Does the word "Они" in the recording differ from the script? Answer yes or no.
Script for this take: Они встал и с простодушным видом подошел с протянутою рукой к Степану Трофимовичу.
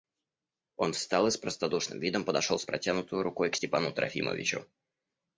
yes